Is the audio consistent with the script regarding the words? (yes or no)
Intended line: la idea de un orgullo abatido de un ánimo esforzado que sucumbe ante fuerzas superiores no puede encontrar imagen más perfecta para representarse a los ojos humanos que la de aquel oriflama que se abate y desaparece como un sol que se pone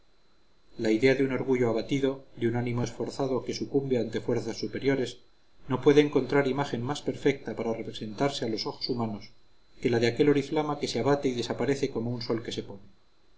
yes